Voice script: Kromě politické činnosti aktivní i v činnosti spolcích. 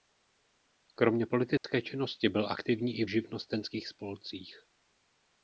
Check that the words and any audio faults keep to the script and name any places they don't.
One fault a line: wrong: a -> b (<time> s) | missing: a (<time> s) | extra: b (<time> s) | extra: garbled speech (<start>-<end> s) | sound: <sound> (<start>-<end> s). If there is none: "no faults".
sound: dropout (1.6-1.6 s)
extra: byl (2.3 s)
wrong: činnosti -> živnostenských (3.1 s)